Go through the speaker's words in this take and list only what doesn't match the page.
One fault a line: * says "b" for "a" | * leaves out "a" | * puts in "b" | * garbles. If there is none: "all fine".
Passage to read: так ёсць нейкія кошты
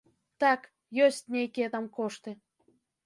* puts in "там"